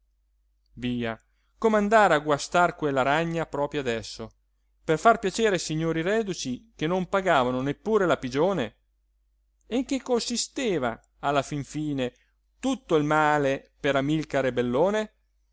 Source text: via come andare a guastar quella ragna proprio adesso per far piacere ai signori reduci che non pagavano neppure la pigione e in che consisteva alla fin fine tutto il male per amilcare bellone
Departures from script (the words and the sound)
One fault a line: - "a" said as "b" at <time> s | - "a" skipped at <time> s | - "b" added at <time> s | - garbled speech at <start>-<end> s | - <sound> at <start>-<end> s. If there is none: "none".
none